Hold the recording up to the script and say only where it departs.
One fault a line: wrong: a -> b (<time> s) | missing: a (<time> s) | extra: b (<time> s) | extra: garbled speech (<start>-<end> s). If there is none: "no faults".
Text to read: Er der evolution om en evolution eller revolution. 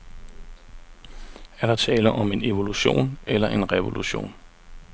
wrong: evolution -> tale (1.7 s)
extra: en (3.5 s)